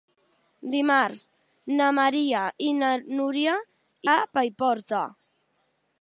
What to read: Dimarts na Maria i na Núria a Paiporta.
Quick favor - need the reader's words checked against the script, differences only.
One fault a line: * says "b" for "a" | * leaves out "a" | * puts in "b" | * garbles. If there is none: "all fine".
all fine